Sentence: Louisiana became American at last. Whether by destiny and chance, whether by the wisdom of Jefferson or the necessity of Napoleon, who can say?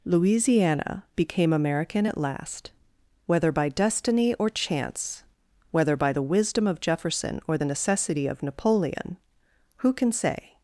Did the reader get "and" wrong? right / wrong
wrong